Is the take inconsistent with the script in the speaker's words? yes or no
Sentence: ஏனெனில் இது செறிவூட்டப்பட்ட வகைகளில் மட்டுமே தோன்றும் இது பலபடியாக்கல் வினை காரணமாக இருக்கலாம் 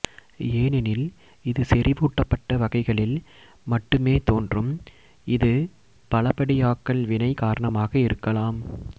no